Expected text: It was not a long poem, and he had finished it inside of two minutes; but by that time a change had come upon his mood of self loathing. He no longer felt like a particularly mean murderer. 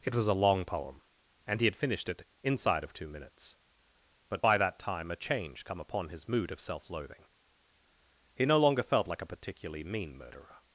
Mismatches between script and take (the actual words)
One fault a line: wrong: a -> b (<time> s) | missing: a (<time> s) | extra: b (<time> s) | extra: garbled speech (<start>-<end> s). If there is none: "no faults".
missing: not (0.3 s)
missing: had (5.6 s)